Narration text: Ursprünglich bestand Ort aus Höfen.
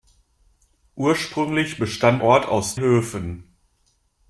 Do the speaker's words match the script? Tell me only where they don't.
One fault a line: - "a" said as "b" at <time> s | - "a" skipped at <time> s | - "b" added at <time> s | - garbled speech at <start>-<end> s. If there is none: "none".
none